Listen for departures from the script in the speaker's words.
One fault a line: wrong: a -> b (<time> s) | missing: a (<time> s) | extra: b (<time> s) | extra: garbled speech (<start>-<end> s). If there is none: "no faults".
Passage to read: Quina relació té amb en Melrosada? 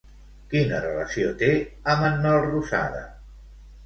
no faults